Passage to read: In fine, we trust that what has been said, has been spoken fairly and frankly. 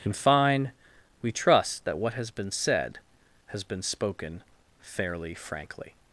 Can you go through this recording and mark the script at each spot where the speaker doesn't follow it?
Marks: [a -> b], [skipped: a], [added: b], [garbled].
In fine, we trust that what has been said, has been spoken fairly [skipped: and] frankly.